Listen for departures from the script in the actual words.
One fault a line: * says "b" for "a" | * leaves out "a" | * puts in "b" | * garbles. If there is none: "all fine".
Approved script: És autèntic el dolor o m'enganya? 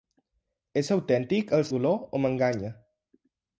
all fine